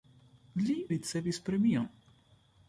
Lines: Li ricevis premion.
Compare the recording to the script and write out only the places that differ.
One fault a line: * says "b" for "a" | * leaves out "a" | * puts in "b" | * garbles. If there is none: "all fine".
all fine